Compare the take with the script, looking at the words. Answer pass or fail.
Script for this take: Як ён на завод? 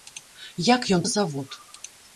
pass